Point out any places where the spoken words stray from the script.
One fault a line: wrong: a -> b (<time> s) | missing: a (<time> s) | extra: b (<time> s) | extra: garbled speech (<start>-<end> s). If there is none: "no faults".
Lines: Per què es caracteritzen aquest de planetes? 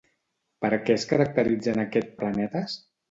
no faults